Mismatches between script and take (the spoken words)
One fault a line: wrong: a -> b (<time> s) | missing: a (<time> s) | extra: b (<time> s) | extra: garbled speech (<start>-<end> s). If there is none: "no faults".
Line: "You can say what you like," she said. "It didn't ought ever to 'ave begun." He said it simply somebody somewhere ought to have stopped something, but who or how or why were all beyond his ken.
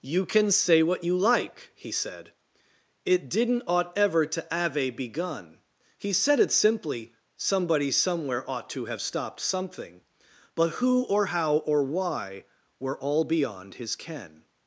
wrong: she -> he (1.8 s)